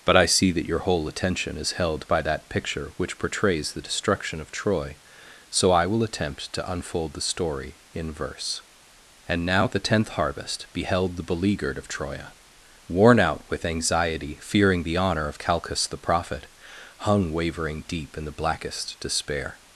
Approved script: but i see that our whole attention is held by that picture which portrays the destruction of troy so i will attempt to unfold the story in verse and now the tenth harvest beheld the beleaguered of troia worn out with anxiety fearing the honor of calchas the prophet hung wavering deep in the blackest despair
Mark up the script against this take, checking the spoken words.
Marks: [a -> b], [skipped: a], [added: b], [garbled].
but i see that [our -> your] whole attention is held by that picture which portrays the destruction of troy so i will attempt to unfold the story in verse and now the tenth harvest beheld the beleaguered of troia worn out with anxiety fearing the honor of calchas the prophet hung wavering deep in the blackest despair